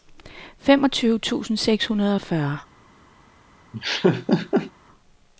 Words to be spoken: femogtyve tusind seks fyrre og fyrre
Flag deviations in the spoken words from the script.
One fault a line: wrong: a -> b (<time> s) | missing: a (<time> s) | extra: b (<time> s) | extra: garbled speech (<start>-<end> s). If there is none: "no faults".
wrong: fyrre -> hundrede (1.9 s)